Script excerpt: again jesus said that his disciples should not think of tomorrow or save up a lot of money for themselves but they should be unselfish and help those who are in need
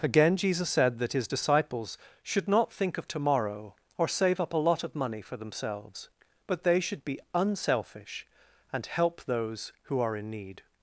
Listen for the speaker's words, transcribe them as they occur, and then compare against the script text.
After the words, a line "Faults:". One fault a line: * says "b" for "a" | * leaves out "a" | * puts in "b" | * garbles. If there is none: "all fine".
again jesus said that his disciples should not think of tomorrow or save up a lot of money for themselves but they should be unselfish and help those who are in need
Faults:
all fine